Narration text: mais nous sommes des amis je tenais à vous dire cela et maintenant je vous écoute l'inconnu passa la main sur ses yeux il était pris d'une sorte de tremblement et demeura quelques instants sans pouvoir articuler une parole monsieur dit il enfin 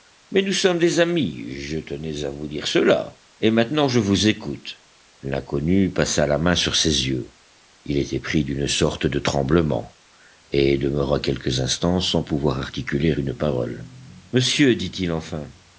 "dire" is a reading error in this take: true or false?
false